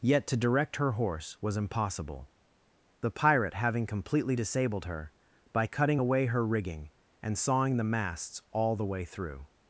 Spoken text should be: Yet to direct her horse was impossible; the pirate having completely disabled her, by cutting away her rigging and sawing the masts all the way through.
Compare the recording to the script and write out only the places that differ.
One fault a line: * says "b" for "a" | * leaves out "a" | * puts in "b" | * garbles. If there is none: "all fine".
all fine